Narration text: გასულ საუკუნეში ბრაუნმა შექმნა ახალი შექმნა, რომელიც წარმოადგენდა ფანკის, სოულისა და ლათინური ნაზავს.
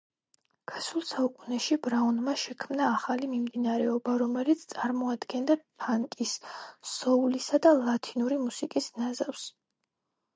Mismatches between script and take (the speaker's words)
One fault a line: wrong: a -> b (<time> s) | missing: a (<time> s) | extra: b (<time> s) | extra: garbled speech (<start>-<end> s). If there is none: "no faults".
wrong: შექმნა -> მიმდინარეობა (3.3 s)
extra: მუსიკის (8.5 s)